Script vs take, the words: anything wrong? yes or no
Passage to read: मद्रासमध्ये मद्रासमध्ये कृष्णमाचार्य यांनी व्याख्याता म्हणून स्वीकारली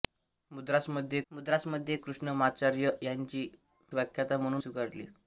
no